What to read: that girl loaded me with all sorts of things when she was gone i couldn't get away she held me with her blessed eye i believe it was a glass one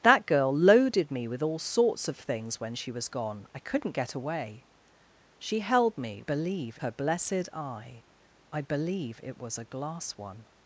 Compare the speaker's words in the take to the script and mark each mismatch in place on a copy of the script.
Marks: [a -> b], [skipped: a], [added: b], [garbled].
that girl loaded me with all sorts of things when she was gone i couldn't get away she held me [with -> believe] her blessed eye i believe it was a glass one